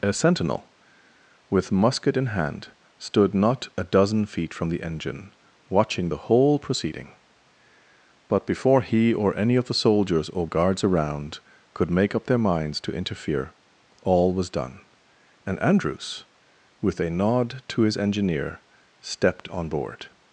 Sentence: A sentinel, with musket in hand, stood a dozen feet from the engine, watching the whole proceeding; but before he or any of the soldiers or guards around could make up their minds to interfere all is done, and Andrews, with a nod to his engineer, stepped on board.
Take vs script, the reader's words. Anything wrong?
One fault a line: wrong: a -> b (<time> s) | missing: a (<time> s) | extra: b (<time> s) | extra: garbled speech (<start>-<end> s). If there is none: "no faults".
extra: not (3.4 s)
wrong: is -> was (14.3 s)